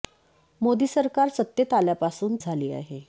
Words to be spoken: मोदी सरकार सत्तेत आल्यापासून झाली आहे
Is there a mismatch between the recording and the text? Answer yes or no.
no